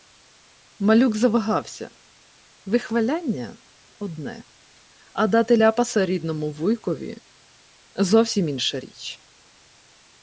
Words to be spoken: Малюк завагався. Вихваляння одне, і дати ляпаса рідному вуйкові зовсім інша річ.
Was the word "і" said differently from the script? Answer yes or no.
yes